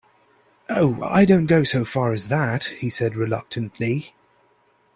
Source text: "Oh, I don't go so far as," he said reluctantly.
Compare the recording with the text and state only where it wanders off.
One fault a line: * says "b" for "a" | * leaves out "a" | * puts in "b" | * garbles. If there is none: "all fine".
* puts in "that"